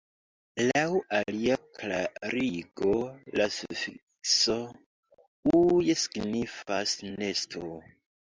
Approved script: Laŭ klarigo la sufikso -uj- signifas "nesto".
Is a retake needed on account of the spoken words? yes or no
yes